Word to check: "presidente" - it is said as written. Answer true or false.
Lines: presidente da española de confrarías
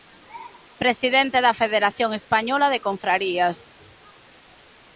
true